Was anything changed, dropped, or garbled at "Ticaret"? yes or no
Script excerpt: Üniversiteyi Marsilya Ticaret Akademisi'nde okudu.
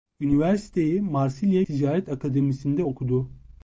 no